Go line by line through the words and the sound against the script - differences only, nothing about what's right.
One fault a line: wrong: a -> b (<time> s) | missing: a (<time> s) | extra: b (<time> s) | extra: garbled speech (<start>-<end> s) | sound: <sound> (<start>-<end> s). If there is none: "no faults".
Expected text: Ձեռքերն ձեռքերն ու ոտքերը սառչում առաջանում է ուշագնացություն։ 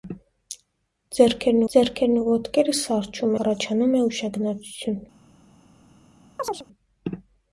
sound: chirp (6.4-6.7 s)